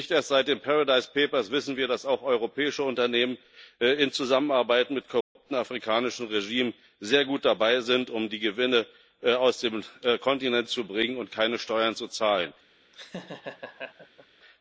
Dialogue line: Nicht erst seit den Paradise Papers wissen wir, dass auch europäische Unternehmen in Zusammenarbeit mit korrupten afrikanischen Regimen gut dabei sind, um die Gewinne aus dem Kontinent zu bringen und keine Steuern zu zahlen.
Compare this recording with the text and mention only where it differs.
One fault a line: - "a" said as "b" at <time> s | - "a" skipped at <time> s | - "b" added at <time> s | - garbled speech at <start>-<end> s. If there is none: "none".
- "sehr" added at 7.0 s